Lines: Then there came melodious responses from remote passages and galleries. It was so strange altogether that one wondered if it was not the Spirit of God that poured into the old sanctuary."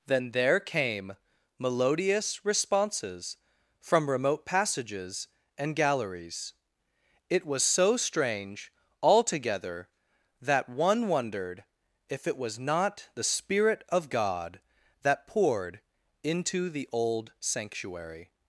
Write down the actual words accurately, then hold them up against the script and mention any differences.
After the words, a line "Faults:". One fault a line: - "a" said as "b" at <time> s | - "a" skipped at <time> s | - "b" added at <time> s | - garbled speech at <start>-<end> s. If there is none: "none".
Then there came melodious responses from remote passages and galleries. It was so strange altogether that one wondered if it was not the Spirit of God that poured into the old sanctuary."
Faults:
none